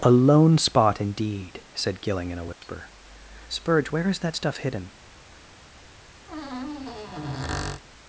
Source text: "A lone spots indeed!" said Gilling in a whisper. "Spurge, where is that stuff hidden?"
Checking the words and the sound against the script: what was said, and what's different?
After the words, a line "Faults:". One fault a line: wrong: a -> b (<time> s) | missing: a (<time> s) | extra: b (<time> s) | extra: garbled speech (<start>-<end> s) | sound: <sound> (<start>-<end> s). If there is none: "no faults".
"A lone spot indeed!" said Gilling in a whisper. "Spurge, where is that stuff hidden?"
Faults:
wrong: spots -> spot (0.6 s)
sound: dropout (2.5-2.6 s)
sound: squeak (6.3-7.8 s)